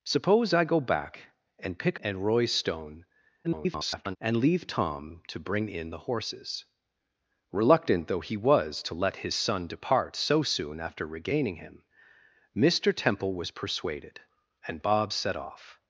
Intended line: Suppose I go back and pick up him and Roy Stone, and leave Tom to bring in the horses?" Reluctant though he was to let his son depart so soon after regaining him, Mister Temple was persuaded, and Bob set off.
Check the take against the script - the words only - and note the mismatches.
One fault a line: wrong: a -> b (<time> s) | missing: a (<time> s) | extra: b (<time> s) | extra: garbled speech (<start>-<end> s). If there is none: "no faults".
missing: up him (2.0 s)
extra: garbled speech (3.4-4.2 s)